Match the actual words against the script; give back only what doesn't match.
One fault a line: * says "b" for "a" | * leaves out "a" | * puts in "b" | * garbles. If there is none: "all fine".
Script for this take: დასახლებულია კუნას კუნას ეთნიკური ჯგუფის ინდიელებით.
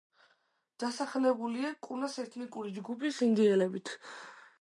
* leaves out "კუნას"